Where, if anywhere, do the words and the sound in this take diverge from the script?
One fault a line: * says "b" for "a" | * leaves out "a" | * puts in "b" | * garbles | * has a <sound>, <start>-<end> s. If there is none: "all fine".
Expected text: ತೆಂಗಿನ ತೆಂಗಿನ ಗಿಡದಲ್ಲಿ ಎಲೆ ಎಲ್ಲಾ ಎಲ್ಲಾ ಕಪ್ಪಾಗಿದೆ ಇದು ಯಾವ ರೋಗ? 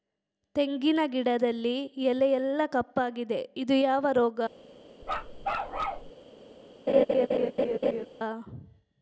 * leaves out "ತೆಂಗಿನ"
* leaves out "ಎಲ್ಲಾ"
* has a bark, 5.0-6.1 s
* has a laugh, 6.9-8.1 s